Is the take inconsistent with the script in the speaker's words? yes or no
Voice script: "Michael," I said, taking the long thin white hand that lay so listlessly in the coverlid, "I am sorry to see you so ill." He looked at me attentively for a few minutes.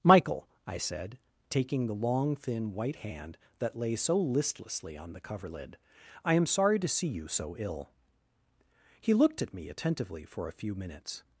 yes